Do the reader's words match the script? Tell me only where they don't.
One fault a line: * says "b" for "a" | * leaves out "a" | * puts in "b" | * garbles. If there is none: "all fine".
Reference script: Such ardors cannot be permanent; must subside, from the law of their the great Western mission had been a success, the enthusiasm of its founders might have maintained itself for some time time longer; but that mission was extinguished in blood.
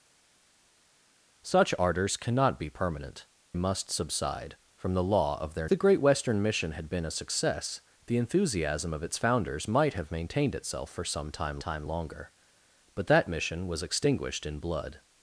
all fine